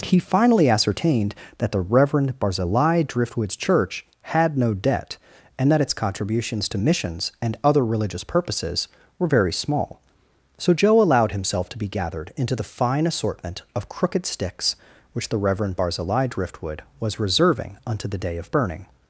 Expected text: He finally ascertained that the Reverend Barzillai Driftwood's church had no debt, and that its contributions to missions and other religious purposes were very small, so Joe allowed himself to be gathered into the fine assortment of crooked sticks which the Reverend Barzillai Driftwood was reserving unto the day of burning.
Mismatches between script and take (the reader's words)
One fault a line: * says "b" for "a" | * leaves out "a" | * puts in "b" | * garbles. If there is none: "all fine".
all fine